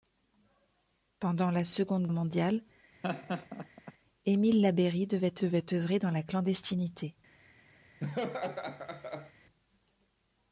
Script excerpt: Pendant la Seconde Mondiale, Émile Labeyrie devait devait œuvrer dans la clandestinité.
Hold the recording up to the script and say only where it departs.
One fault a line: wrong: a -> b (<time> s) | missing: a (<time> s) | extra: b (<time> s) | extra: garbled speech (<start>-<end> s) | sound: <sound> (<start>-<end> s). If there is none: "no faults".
sound: laugh (3.0-3.9 s)
sound: laugh (8.0-9.3 s)